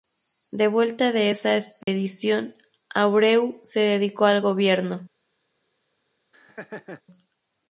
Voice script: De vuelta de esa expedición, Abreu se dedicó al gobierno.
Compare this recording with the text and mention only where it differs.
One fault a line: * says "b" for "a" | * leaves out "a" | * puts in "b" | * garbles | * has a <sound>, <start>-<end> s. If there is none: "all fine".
* has a dropout, 1.8-1.9 s
* has a laugh, 6.3-7.0 s